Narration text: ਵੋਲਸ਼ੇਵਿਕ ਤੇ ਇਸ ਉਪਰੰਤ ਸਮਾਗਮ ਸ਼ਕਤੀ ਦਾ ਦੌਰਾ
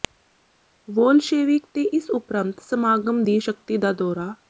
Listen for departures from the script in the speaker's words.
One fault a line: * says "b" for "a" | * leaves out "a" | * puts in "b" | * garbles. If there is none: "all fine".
* puts in "ਦੀ"